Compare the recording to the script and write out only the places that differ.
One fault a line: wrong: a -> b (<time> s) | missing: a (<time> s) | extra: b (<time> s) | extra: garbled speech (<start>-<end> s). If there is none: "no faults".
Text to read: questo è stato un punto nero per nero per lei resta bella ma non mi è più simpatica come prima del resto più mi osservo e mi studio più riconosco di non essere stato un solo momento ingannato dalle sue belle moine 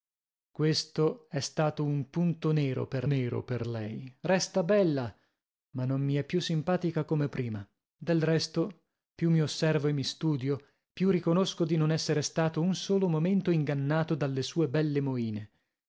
no faults